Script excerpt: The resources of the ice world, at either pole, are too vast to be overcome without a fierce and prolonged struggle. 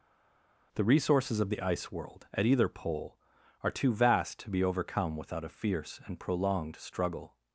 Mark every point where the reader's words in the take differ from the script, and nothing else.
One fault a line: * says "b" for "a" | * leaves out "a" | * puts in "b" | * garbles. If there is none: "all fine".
all fine